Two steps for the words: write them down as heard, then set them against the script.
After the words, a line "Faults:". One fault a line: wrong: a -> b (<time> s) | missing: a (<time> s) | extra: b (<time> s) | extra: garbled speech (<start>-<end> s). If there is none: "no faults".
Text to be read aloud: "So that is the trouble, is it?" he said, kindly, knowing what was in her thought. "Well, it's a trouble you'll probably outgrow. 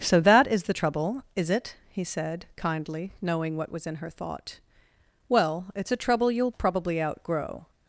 "So that is the trouble, is it?" he said, kindly, knowing what was in her thought. "Well, it's a trouble you'll probably outgrow.
Faults:
no faults